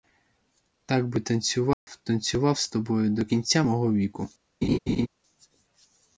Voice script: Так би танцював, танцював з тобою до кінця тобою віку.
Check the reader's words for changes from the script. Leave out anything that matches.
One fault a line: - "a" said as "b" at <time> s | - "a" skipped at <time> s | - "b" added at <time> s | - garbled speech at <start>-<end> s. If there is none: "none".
- "тобою" said as "мого" at 3.6 s